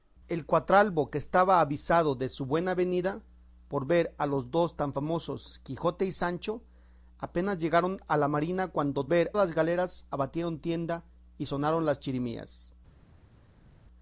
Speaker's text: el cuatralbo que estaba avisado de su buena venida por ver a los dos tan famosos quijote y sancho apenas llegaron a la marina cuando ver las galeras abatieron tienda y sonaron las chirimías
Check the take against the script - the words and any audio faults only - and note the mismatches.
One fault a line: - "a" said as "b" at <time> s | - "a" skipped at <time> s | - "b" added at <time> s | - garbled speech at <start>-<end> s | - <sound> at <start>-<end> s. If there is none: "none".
none